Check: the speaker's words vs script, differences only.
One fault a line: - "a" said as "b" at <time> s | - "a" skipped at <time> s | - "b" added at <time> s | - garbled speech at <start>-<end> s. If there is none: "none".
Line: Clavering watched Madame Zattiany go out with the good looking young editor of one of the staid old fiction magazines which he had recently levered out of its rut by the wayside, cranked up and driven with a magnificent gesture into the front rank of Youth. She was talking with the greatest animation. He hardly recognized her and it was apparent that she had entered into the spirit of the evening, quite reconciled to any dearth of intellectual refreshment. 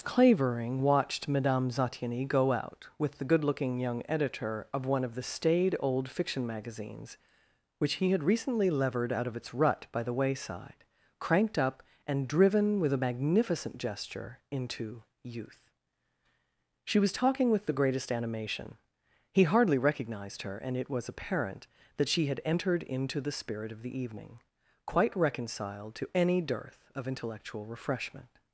- "the front rank of" skipped at 15.0 s